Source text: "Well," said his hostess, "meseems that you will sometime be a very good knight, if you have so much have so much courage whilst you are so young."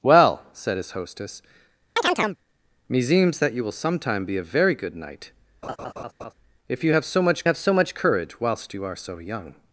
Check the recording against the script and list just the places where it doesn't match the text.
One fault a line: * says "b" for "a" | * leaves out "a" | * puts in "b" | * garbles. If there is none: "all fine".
all fine